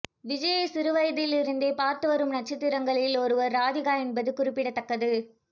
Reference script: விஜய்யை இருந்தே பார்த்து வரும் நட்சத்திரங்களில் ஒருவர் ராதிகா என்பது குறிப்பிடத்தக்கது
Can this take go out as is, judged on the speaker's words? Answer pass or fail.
fail